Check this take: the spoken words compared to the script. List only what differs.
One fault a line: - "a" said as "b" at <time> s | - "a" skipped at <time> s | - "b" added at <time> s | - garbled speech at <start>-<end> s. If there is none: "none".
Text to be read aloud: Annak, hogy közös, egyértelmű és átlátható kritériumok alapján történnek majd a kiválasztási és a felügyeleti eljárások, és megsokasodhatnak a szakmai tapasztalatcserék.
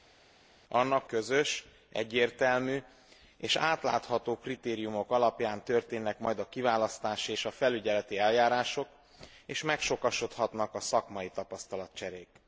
- "hogy" skipped at 1.0 s